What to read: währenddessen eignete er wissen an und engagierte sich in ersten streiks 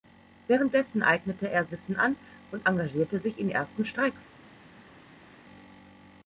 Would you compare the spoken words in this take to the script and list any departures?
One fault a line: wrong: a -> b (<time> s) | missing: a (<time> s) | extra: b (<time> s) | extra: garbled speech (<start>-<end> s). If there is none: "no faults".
no faults